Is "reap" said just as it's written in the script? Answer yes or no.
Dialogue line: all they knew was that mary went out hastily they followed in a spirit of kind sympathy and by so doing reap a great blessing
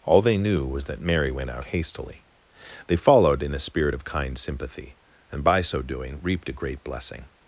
no